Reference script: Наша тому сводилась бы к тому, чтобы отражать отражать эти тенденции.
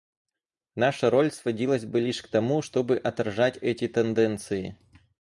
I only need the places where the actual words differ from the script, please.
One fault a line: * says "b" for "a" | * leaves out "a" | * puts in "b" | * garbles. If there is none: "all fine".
* says "роль" for "тому"
* puts in "лишь"
* leaves out "отражать"